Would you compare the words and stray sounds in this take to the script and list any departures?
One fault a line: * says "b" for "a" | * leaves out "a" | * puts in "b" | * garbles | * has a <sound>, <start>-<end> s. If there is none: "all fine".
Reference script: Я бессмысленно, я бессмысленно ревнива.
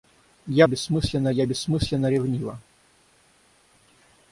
all fine